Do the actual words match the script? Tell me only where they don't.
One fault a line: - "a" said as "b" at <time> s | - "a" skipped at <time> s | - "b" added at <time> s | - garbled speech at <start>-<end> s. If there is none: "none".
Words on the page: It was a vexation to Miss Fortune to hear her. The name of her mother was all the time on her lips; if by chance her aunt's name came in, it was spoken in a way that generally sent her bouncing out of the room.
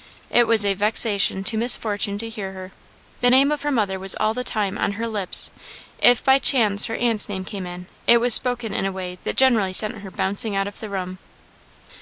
none